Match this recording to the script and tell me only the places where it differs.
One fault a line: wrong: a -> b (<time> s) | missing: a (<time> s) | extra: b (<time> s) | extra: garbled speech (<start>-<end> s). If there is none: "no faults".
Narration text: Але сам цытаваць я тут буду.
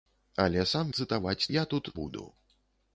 no faults